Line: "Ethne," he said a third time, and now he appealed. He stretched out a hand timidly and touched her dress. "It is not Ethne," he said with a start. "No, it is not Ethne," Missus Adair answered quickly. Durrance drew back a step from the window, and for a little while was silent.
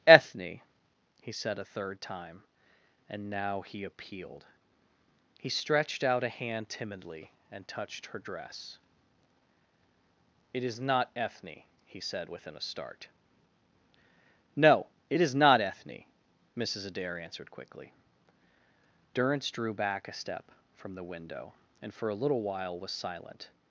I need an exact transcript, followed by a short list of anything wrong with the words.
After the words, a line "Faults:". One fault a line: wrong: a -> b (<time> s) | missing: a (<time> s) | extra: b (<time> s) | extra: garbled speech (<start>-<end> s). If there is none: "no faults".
"Ethne," he said a third time, and now he appealed. He stretched out a hand timidly and touched her dress. "It is not Ethne," he said within a start. "No, it is not Ethne," Missus Adair answered quickly. Durrance drew back a step from the window, and for a little while was silent.
Faults:
wrong: with -> within (12.3 s)